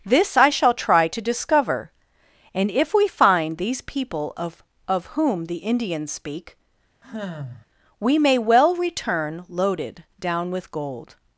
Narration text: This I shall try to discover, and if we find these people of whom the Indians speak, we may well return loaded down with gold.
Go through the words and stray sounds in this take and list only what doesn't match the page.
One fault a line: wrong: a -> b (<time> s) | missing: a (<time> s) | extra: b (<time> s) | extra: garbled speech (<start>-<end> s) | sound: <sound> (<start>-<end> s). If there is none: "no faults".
extra: of (4.9 s)
sound: sigh (7.0-7.7 s)